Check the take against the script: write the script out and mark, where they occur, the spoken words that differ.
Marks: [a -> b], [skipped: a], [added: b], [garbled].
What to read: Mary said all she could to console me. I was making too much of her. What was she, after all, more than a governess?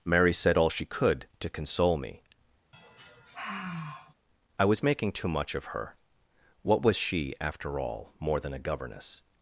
Mary said all she could to console me. I was making too much of her. What was she, after all, more than a governess?